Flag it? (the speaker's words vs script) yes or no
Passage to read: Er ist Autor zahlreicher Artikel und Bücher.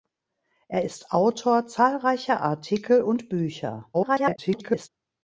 yes